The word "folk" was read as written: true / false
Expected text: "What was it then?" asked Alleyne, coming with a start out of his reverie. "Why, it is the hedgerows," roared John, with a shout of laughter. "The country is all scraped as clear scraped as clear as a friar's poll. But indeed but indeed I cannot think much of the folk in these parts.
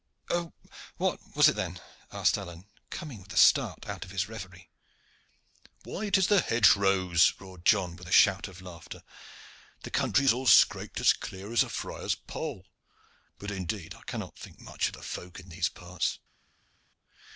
true